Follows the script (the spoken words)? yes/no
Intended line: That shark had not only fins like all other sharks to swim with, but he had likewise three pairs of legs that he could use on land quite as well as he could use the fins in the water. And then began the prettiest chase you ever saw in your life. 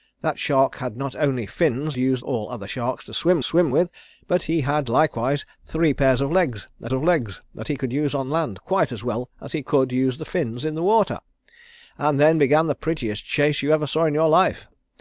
no